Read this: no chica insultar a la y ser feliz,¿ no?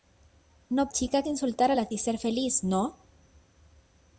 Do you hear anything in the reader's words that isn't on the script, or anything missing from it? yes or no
no